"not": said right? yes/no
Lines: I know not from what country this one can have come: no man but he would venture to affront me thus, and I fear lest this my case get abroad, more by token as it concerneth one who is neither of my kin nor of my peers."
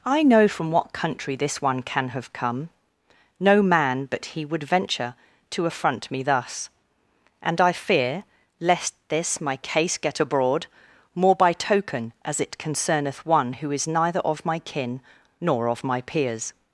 no